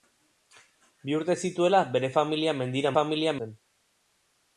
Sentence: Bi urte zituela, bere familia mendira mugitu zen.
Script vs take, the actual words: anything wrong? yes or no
yes